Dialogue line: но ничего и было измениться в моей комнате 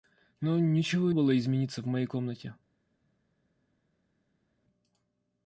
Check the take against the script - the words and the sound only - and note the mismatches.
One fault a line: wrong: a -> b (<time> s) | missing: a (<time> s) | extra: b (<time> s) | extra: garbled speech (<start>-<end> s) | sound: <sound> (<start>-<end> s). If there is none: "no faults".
no faults